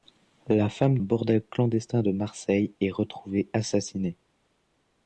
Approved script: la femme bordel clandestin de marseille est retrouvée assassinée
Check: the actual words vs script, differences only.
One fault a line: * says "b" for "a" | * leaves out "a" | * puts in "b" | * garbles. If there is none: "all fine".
all fine